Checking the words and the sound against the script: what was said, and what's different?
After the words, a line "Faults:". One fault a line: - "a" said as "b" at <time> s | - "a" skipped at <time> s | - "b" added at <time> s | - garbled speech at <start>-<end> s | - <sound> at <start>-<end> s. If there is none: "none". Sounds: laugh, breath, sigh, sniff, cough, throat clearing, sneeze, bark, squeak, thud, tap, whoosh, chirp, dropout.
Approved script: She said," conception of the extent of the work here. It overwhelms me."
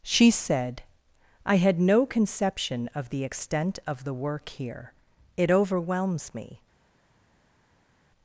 She said," I had no conception of the extent of the work here. It overwhelms me."
Faults:
- "I had no" added at 1.4 s